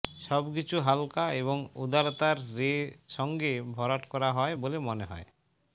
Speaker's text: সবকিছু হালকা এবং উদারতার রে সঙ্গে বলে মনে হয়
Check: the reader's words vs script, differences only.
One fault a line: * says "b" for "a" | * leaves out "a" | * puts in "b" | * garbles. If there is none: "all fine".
* puts in "ভরাট করা হয়"